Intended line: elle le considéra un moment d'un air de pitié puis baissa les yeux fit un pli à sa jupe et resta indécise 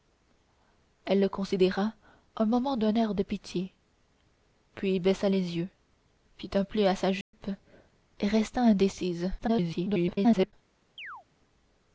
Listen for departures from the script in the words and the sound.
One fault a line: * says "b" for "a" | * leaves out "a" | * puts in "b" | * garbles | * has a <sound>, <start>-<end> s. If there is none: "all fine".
* has a dropout, 7.2-7.3 s
* garbles
* has a chirp, 11.0-11.2 s